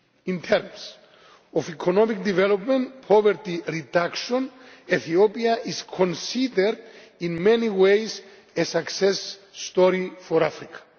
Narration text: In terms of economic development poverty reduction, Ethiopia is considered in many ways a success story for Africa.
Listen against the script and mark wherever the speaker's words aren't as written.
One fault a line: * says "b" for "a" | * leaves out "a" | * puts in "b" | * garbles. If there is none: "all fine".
all fine